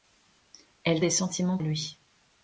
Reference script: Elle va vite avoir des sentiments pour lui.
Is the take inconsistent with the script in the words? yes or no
yes